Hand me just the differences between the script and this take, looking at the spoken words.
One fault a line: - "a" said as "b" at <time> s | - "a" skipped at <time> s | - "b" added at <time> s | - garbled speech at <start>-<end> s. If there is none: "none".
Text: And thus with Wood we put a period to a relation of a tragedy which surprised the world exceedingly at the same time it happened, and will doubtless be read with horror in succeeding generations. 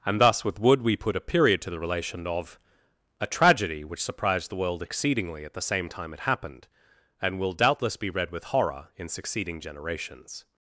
- "a" said as "the" at 1.7 s